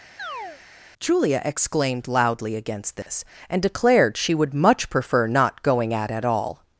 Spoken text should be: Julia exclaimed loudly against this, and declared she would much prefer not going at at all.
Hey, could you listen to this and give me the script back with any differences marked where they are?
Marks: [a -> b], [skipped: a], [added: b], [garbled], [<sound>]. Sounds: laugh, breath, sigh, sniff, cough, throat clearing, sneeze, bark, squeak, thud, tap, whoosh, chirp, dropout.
[chirp] Julia exclaimed loudly against this, [dropout] and declared she would much prefer not going at at all.